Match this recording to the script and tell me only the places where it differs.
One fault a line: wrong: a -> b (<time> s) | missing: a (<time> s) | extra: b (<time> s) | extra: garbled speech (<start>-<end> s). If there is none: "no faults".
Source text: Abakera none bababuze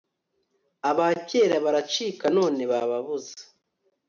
extra: baracika (1.6 s)